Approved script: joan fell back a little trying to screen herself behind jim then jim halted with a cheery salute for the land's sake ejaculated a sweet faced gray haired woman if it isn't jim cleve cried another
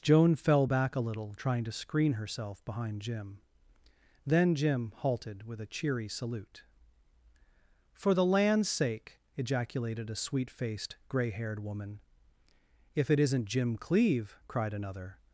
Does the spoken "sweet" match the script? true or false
true